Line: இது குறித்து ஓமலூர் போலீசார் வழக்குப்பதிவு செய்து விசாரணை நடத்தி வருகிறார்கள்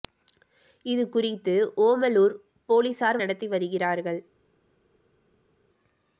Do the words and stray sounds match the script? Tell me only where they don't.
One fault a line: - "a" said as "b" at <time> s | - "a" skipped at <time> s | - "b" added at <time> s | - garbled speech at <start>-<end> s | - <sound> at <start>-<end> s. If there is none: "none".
- "வழக்குப்பதிவு செய்து விசாரணை" skipped at 3.2 s